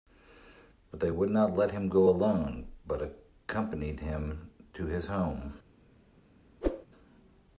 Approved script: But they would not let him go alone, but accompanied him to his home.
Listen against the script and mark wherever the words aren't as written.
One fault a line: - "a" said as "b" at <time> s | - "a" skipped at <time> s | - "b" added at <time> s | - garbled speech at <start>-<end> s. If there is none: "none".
none